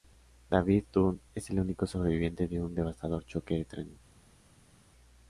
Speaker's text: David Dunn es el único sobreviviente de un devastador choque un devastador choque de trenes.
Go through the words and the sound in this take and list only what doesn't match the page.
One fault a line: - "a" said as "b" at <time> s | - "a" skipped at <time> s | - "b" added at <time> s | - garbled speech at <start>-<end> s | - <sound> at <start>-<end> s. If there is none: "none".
- "un devastador choque" skipped at 3.6 s